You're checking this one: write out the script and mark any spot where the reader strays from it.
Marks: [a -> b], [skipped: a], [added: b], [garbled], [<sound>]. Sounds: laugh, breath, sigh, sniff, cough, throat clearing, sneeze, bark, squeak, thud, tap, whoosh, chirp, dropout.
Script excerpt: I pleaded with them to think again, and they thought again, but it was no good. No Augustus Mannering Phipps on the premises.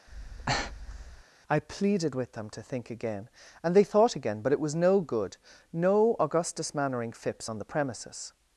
[breath] I pleaded with them to think again, and they thought again, but it was no good. No Augustus Mannering Phipps on the premises.